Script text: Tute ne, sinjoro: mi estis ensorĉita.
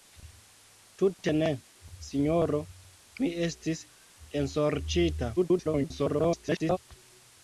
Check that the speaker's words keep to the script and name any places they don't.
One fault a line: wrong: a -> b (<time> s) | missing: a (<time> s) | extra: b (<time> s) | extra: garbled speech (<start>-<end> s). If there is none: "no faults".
extra: garbled speech (5.4-6.8 s)